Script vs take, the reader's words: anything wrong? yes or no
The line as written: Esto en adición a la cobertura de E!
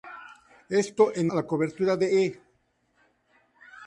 yes